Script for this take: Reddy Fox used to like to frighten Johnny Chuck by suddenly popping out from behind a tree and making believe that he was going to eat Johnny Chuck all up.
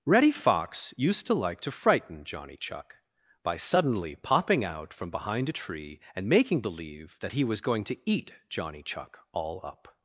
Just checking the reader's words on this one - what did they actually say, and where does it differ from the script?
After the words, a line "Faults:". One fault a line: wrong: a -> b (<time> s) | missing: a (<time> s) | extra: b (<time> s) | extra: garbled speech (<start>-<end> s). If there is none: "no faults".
Reddy Fox used to like to frighten Johnny Chuck by suddenly popping out from behind a tree and making believe that he was going to eat Johnny Chuck all up.
Faults:
no faults